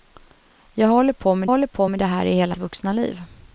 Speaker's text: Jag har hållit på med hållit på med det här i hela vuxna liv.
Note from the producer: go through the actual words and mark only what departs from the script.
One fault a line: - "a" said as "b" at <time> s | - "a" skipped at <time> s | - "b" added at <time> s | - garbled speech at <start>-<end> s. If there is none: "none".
none